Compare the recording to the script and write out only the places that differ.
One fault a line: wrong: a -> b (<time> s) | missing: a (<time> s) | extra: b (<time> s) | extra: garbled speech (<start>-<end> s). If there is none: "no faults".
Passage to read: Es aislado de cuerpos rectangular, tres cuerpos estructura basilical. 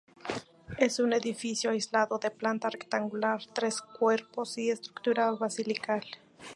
extra: un edificio (1.0 s)
wrong: cuerpos -> planta (2.3 s)
extra: y (4.6 s)